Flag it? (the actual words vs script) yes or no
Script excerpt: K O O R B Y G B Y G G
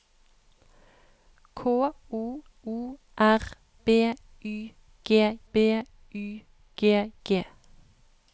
no